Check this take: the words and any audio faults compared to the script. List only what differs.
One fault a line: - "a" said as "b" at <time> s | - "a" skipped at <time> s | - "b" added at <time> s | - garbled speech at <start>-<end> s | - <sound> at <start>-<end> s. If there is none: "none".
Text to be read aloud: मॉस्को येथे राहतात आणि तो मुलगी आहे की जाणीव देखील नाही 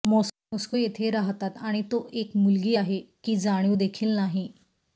- "एक" added at 2.1 s